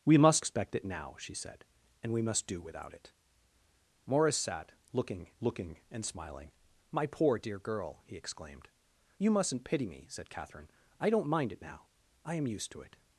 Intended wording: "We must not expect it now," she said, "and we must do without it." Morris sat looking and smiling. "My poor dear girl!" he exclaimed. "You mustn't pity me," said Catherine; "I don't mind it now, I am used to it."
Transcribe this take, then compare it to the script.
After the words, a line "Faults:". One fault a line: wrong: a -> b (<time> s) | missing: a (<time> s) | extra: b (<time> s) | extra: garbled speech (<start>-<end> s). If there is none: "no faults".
"We must expect it now," she said, "and we must do without it." Morris sat looking looking and smiling. "My poor dear girl!" he exclaimed. "You mustn't pity me," said Catherine; "I don't mind it now, I am used to it."
Faults:
missing: not (0.4 s)
extra: looking (5.4 s)